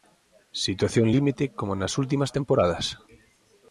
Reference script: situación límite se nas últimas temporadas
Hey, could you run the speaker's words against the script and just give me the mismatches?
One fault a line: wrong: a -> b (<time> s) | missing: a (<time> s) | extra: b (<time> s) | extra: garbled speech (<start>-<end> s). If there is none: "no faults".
wrong: se -> como (1.6 s)